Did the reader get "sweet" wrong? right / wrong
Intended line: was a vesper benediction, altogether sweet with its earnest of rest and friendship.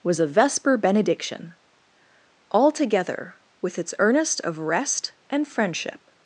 wrong